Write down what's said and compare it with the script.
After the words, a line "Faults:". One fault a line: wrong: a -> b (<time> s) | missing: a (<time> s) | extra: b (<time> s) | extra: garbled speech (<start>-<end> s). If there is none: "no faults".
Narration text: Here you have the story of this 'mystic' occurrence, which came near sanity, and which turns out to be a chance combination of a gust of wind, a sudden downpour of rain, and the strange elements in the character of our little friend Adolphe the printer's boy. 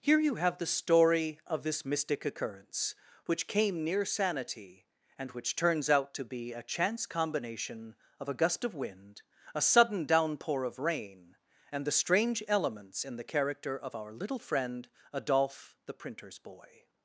Here you have the story of this 'mystic' occurrence, which came near sanity, and which turns out to be a chance combination of a gust of wind, a sudden downpour of rain, and the strange elements in the character of our little friend Adolphe the printer's boy.
Faults:
no faults